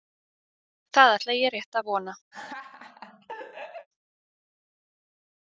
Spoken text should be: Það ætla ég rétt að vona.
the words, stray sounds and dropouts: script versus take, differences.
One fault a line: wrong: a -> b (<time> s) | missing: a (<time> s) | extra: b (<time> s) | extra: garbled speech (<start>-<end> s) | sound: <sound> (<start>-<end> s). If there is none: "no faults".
sound: laugh (2.3-3.9 s)